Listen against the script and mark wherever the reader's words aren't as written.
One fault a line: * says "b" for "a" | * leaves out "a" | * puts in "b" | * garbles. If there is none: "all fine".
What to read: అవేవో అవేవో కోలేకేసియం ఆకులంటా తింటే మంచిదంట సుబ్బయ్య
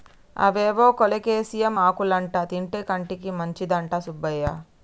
* leaves out "అవేవో"
* puts in "కంటికి"